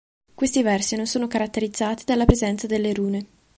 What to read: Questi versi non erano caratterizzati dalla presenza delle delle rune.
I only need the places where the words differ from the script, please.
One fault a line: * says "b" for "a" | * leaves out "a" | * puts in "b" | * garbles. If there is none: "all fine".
* says "sono" for "erano"
* leaves out "delle"